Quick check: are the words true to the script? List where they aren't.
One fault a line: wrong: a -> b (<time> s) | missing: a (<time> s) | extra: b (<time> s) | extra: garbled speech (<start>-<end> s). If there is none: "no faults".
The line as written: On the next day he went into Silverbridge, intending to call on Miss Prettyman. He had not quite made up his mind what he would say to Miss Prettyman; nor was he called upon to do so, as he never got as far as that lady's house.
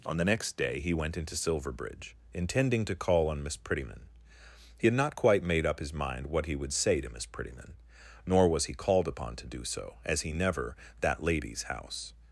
missing: got as far as (10.8 s)